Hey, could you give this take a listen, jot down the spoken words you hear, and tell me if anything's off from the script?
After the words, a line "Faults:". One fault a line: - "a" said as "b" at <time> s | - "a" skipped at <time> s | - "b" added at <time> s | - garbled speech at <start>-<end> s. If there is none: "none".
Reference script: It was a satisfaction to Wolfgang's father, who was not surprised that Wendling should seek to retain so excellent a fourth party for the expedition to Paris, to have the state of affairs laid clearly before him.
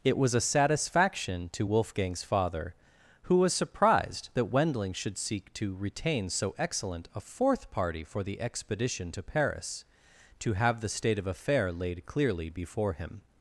It was a satisfaction to Wolfgang's father, who was surprised that Wendling should seek to retain so excellent a fourth party for the expedition to Paris, to have the state of affair laid clearly before him.
Faults:
- "not" skipped at 3.5 s
- "affairs" said as "affair" at 11.3 s